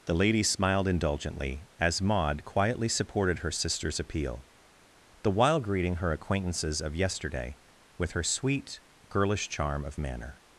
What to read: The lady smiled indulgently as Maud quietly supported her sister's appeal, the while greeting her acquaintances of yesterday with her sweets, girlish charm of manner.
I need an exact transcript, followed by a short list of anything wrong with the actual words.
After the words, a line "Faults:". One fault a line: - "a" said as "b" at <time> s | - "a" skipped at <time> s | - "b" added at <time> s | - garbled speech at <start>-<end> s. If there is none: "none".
The lady smiled indulgently as Maud quietly supported her sister's appeal, the while greeting her acquaintances of yesterday with her sweet, girlish charm of manner.
Faults:
- "sweets" said as "sweet" at 8.2 s